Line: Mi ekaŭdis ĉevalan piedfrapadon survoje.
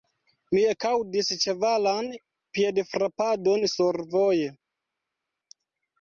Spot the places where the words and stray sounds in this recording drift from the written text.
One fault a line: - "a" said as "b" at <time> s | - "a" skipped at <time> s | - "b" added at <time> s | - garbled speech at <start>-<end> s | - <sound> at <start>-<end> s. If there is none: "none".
none